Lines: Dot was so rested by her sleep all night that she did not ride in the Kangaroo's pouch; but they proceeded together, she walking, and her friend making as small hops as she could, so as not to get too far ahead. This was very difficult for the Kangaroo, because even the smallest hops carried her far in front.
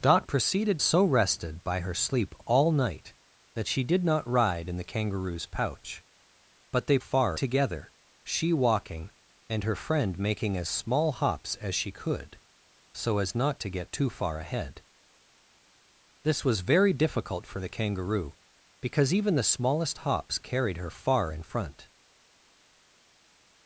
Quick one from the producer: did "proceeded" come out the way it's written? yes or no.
no